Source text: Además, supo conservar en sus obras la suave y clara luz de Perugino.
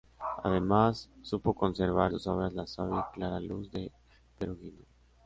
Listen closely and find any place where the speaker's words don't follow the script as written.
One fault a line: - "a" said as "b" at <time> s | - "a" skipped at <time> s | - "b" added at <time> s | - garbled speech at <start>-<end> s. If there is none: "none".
- "en" skipped at 2.1 s